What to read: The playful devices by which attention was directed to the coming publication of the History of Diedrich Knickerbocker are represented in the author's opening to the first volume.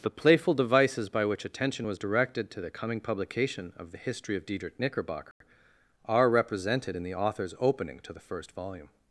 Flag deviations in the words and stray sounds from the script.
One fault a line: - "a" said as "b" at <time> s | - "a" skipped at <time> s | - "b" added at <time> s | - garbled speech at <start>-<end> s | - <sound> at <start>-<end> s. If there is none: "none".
- dropout at 5.3-5.4 s